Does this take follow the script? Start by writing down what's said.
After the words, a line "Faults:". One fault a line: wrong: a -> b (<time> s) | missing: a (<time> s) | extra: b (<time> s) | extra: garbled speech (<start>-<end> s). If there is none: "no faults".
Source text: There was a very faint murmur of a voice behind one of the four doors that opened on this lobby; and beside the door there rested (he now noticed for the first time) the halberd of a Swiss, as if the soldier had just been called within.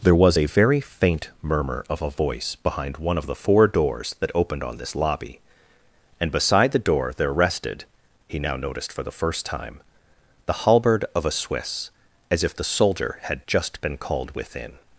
There was a very faint murmur of a voice behind one of the four doors that opened on this lobby; and beside the door there rested (he now noticed for the first time) the halberd of a Swiss, as if the soldier had just been called within.
Faults:
no faults